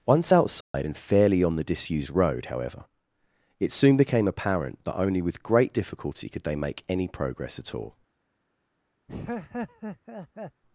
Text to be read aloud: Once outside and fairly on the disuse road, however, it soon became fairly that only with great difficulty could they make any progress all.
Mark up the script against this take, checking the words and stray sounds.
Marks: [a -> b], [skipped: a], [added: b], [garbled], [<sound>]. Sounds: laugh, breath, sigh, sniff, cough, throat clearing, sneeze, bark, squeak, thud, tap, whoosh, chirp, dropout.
Once outside [dropout] and fairly on the [disuse -> disused] road, however, it soon became [fairly -> apparent] that only with great difficulty could they make any progress [added: at] all. [laugh]